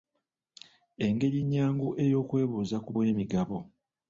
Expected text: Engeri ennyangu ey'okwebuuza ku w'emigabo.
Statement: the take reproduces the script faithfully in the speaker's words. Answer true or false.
true